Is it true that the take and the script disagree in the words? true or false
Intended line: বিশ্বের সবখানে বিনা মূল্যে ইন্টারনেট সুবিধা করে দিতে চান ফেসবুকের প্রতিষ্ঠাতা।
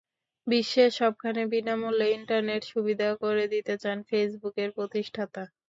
false